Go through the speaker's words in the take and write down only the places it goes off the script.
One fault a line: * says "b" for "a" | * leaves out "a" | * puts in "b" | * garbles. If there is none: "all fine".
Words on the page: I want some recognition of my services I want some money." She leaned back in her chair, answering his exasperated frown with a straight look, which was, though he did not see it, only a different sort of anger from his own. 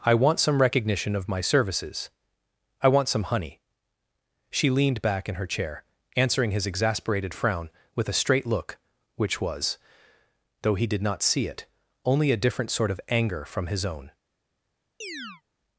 * says "honey" for "money"